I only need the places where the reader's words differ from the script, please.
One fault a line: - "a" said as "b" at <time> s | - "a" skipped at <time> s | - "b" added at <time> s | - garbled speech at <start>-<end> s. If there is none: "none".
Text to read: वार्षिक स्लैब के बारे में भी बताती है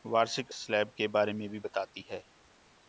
none